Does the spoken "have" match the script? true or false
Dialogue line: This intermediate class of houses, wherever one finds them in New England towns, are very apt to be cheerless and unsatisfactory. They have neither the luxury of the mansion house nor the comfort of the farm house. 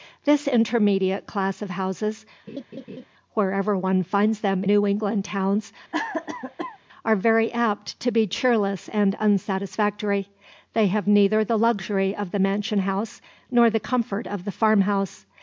true